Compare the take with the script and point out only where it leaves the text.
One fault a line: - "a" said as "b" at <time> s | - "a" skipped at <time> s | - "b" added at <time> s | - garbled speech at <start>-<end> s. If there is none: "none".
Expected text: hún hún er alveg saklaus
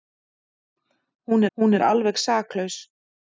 none